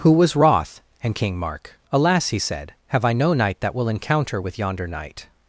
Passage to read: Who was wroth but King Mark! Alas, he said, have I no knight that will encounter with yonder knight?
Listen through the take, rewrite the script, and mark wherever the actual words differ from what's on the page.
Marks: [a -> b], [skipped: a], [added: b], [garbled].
Who was wroth [but -> and] King Mark! Alas, he said, have I no knight that will encounter with yonder knight?